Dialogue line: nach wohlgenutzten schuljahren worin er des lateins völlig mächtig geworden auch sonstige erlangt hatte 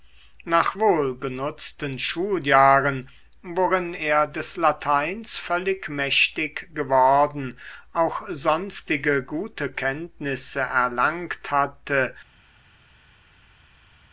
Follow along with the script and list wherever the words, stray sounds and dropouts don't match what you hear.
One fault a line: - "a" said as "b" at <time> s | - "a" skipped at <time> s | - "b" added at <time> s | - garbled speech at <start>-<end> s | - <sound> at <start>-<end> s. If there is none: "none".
- "gute kenntnisse" added at 9.2 s